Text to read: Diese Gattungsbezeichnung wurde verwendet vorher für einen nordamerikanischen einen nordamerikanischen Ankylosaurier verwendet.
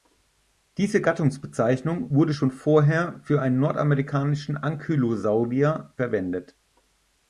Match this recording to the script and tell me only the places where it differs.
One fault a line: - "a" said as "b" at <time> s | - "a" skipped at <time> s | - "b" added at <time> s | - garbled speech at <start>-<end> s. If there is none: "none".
- "verwendet" said as "schon" at 2.3 s
- "einen nordamerikanischen" skipped at 4.6 s